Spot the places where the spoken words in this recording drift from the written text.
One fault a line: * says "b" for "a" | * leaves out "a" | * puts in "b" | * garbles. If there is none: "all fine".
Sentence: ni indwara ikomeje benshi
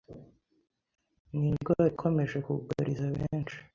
* puts in "kugariza"